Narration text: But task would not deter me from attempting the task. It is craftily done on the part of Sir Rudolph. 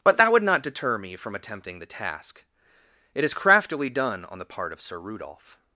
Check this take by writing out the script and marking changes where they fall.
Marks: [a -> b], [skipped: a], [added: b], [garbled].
But [task -> that] would not deter me from attempting the task. It is craftily done on the part of Sir Rudolph.